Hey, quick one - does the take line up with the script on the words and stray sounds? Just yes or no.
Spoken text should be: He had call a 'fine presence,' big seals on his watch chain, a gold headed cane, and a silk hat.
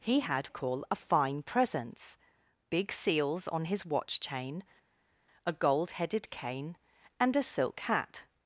yes